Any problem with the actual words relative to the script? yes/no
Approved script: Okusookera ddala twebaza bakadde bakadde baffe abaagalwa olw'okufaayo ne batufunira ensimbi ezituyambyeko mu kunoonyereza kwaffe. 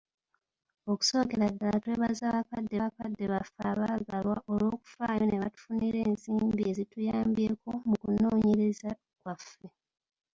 no